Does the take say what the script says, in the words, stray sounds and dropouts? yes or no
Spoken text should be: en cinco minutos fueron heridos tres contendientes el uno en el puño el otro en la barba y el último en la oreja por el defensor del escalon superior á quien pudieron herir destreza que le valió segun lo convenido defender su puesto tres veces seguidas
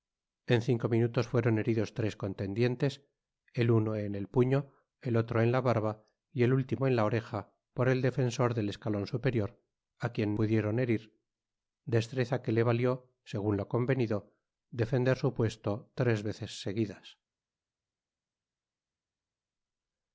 yes